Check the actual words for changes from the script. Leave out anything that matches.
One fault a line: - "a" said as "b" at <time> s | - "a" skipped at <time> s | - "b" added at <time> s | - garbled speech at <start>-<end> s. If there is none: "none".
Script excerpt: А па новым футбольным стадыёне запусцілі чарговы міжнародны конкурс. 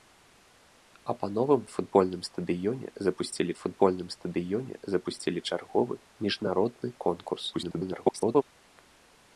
- "футбольным стадыёне запусцілі" added at 3.6 s
- garbled speech at 7.5-8.4 s